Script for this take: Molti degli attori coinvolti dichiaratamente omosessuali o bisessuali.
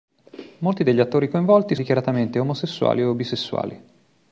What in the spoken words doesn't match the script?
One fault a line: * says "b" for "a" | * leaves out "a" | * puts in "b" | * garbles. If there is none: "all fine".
all fine